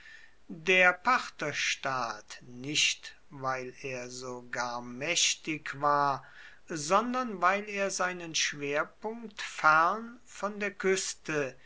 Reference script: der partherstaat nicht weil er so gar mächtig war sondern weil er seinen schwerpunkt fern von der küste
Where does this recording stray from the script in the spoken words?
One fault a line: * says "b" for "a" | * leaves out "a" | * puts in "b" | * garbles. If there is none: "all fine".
all fine